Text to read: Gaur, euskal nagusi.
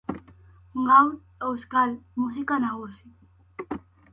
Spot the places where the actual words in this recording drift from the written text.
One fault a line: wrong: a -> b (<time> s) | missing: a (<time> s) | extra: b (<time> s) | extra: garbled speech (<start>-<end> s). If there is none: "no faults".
extra: musika (2.2 s)